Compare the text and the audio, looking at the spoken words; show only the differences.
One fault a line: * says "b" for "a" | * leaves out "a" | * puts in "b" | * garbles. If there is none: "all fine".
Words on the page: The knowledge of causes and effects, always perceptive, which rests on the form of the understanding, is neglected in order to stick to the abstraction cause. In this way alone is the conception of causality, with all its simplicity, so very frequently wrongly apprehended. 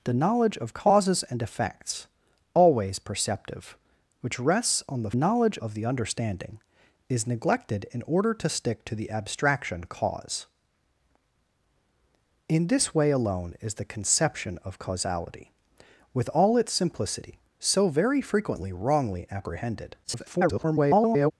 * says "knowledge" for "form"
* garbles